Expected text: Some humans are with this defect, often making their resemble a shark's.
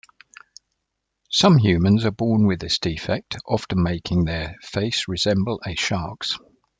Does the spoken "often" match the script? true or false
true